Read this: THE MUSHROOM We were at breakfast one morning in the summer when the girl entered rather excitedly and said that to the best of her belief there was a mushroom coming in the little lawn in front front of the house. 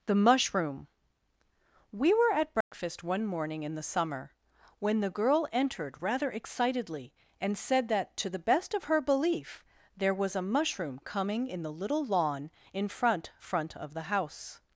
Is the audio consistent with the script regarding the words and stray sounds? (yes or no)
no